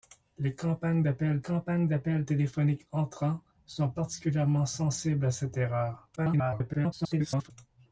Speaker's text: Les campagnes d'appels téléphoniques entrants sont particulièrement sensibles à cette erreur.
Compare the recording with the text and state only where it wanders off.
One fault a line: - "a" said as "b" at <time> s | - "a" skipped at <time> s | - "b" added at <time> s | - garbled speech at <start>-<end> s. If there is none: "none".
- "campagnes d'appels" added at 1.4 s
- garbled speech at 6.2-7.5 s